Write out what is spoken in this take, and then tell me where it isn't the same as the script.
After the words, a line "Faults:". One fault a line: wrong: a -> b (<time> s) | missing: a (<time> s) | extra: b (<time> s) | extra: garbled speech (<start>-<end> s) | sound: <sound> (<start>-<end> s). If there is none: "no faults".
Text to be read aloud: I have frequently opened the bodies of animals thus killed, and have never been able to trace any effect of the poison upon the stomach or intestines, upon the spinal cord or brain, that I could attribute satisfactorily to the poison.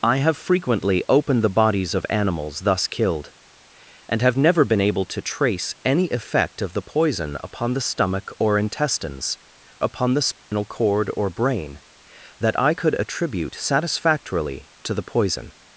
I have frequently opened the bodies of animals thus killed, and have never been able to trace any effect of the poison upon the stomach or intestines, upon the spinal cord or brain, that I could attribute satisfactorily to the poison.
Faults:
sound: dropout (10.4-10.5 s)